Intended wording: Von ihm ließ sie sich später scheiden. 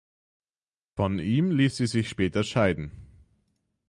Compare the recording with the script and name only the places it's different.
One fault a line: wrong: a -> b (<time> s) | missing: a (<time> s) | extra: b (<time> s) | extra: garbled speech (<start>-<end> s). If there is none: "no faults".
no faults